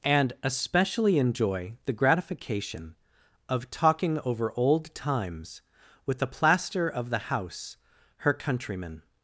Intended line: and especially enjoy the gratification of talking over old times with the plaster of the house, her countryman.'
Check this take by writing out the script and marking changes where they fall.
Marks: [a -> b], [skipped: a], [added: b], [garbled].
and especially enjoy the gratification of talking over old times with the plaster of the house, her countryman.'